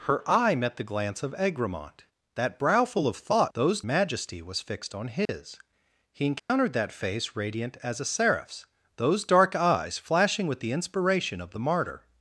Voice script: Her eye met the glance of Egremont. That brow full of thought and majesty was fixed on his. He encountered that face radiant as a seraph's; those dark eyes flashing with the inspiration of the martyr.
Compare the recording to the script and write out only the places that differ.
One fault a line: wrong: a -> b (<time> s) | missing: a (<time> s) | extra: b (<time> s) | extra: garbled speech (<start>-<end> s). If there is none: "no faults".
wrong: and -> those (3.5 s)